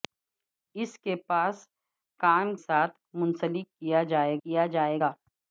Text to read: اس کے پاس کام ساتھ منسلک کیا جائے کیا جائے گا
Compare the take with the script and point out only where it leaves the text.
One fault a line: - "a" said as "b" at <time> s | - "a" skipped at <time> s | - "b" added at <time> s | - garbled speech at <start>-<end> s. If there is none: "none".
none